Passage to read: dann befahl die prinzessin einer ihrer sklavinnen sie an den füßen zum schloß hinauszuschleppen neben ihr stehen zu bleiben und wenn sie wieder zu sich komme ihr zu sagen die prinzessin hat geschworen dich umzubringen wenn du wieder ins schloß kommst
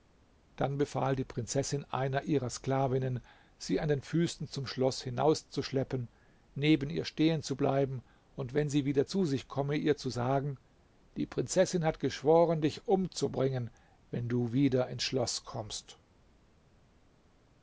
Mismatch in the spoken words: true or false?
false